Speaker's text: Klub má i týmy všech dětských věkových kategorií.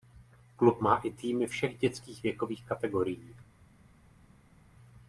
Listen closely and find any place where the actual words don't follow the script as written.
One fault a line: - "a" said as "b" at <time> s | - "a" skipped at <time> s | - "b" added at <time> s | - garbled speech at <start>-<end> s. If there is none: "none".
none